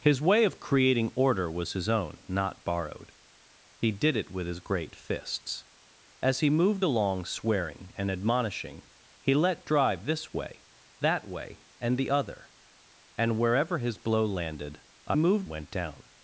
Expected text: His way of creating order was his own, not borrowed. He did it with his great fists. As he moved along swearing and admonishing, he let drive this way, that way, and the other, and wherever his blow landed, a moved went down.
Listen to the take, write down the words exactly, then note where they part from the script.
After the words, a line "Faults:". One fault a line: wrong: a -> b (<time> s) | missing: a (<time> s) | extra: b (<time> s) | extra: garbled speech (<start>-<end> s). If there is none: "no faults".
His way of creating order was his own, not borrowed. He did it with his great fists. As he moved along swearing and admonishing, he let drive this way, that way, and the other, and wherever his blow landed, a moved went down.
Faults:
no faults